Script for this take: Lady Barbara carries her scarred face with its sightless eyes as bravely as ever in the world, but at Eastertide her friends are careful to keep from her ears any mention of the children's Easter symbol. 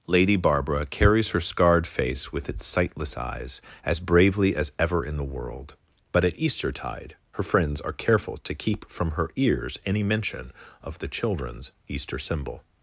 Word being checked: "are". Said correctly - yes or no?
yes